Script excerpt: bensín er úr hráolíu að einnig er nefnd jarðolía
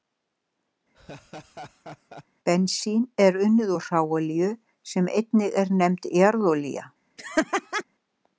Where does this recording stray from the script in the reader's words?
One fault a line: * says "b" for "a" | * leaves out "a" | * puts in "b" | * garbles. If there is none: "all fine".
* puts in "unnið"
* says "sem" for "að"